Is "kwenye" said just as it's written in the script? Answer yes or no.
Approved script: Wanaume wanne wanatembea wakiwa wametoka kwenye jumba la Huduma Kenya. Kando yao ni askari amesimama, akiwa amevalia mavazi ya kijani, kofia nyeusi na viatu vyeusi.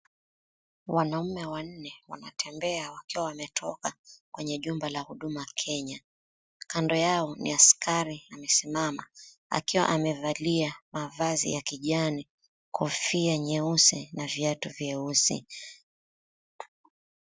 yes